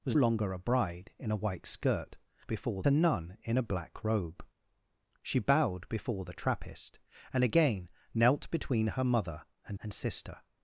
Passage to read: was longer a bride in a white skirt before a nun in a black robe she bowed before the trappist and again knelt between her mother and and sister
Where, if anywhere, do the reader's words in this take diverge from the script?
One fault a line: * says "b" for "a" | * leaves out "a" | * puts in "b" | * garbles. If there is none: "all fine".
all fine